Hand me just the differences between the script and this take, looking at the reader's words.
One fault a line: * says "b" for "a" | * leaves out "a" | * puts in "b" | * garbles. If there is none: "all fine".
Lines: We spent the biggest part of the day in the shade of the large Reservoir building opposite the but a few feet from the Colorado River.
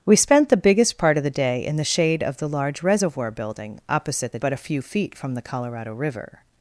all fine